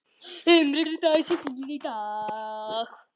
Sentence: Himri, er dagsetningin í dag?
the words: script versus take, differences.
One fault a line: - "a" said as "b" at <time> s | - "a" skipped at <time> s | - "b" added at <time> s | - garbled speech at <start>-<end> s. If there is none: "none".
none